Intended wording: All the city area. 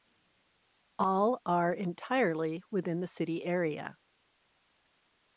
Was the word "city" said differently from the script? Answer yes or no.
no